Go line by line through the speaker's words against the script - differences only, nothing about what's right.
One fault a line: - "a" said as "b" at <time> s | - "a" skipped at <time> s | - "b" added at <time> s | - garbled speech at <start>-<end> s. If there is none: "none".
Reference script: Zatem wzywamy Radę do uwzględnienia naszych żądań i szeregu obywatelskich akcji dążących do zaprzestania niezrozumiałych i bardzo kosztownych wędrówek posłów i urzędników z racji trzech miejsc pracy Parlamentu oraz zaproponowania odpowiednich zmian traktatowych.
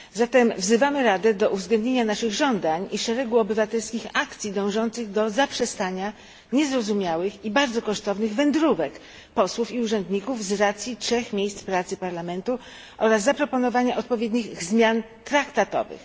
none